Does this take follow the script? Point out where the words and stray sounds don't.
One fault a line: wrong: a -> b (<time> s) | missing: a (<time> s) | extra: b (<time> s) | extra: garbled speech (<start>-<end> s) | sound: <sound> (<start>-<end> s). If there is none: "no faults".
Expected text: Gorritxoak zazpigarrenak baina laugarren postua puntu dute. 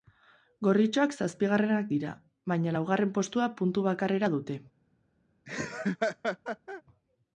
extra: dira (1.9 s)
extra: bakarrera (3.9 s)
sound: laugh (5.5-6.8 s)